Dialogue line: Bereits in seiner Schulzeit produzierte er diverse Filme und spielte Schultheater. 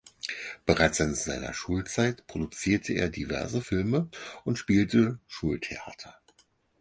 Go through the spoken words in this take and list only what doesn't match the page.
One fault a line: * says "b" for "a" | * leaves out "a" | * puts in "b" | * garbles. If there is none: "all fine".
all fine